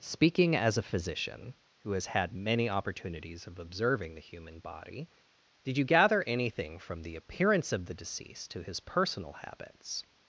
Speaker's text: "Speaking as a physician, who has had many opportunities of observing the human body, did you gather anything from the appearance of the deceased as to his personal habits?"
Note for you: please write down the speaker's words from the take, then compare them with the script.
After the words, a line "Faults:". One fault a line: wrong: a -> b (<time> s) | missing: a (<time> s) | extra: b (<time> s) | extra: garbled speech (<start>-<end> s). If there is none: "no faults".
"Speaking as a physician, who has had many opportunities of observing the human body, did you gather anything from the appearance of the deceased to his personal habits?"
Faults:
missing: as (8.5 s)